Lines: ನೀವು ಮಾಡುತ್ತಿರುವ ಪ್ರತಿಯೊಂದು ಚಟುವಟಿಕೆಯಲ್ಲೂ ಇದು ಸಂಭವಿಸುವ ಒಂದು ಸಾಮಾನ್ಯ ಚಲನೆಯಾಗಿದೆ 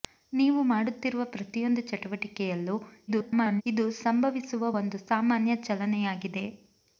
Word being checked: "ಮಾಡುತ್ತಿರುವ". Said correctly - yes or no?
yes